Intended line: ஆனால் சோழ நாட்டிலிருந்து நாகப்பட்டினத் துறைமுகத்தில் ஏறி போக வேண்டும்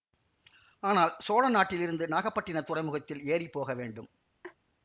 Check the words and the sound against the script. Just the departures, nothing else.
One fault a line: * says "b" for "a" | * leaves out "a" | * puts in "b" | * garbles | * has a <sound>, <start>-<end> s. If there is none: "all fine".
* has a laugh, 4.4-4.6 s